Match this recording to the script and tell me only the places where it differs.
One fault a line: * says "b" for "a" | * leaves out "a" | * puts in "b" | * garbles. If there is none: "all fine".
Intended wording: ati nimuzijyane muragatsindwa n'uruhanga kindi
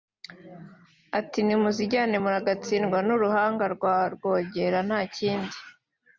* puts in "rwa rwogera nta"